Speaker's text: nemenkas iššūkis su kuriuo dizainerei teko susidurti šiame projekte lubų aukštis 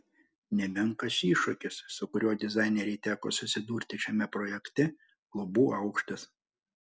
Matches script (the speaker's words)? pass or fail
pass